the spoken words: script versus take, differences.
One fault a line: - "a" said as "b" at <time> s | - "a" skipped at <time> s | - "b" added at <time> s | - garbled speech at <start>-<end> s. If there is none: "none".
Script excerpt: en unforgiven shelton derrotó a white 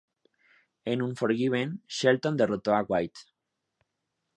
none